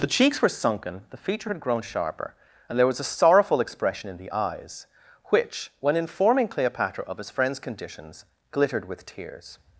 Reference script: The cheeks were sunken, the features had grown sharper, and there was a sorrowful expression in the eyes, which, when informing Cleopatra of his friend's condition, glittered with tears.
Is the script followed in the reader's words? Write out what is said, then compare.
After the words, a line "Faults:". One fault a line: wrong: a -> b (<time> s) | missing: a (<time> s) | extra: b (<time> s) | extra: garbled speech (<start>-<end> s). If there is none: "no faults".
The cheeks were sunken, the feature had grown sharper, and there was a sorrowful expression in the eyes, which, when informing Cleopatra of his friend's conditions, glittered with tears.
Faults:
wrong: features -> feature (1.2 s)
wrong: condition -> conditions (7.6 s)